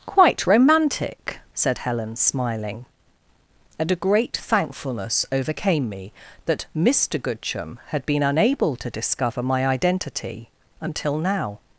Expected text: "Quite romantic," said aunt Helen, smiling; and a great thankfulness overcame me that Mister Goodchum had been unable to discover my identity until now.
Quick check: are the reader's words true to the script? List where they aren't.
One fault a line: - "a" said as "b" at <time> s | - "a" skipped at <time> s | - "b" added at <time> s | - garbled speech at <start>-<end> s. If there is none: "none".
- "aunt" skipped at 1.8 s